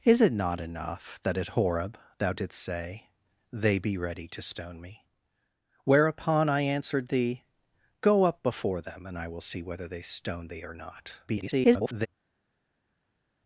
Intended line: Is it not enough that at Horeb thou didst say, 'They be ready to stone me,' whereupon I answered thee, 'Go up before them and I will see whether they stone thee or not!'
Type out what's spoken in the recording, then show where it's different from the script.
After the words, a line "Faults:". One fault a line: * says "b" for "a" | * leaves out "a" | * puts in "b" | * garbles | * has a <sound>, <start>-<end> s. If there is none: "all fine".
Is it not enough that at Horeb thou didst say, 'They be ready to stone me,' whereupon I answered thee, 'Go up before them and I will see whether they stone thee or not!' [garbled]
Faults:
* garbles